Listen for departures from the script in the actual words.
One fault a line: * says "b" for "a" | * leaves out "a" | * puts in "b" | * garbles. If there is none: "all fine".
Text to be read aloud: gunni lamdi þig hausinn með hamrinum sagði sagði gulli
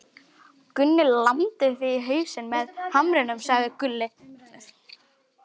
* puts in "í"
* leaves out "sagði"